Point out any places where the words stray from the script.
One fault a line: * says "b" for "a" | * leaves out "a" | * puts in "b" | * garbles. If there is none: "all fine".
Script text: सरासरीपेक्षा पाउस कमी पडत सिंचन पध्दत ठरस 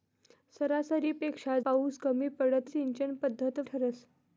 all fine